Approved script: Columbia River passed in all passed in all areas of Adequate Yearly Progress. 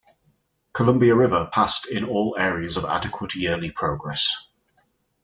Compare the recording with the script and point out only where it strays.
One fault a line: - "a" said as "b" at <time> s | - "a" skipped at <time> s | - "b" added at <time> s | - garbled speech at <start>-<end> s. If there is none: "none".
- "passed in all" skipped at 2.4 s